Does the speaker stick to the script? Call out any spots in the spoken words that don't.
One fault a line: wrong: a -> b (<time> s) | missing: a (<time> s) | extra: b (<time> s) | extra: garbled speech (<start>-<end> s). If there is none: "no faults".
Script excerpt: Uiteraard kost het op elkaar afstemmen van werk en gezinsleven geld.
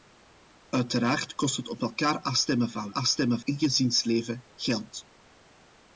wrong: werk -> afstemmen (2.9 s)